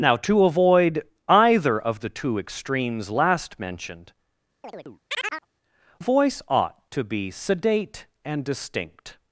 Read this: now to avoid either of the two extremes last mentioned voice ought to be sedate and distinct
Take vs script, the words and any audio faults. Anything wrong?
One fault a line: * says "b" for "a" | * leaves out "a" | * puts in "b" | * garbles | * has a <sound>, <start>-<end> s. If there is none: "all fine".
* has a chirp, 4.6-5.5 s